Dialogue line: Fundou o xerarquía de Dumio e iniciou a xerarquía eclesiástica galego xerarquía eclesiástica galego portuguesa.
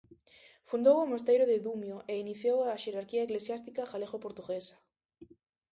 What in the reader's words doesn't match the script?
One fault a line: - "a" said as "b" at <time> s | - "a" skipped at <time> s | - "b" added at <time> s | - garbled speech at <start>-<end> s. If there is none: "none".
- "xerarquía" said as "mosteiro" at 1.1 s
- "xerarquía eclesiástica galego" skipped at 4.2 s